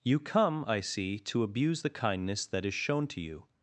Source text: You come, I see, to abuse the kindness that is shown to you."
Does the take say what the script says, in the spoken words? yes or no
yes